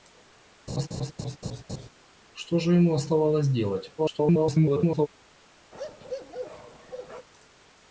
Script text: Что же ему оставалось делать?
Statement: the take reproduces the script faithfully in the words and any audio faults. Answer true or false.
false